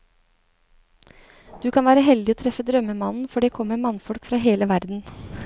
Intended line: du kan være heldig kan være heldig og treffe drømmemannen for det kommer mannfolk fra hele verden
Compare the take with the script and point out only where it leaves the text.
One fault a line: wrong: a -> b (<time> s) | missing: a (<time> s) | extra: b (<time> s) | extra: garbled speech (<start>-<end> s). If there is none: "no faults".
missing: kan være heldig (2.4 s)